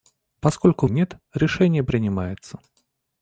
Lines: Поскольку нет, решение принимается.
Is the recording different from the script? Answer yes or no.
no